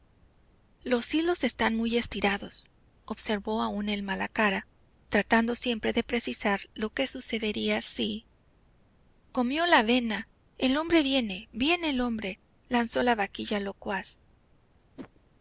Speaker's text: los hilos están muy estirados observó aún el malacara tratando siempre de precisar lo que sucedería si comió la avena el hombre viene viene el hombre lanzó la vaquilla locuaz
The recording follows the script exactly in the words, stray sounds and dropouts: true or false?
false